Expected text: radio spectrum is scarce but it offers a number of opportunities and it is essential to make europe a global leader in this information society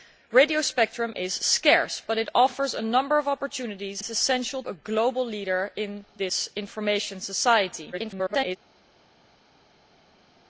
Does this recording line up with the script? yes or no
no